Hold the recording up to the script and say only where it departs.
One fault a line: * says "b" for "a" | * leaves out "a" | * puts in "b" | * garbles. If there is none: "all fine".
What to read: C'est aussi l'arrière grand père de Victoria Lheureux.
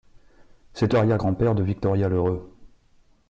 * leaves out "aussi"